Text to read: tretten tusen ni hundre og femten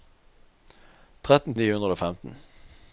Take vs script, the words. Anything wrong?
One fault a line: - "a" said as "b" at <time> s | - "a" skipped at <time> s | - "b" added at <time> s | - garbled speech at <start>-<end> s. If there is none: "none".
- "tusen" skipped at 1.6 s